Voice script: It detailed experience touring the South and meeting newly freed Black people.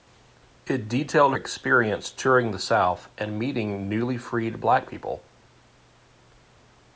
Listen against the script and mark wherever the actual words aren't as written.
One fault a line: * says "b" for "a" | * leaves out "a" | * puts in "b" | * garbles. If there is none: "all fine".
all fine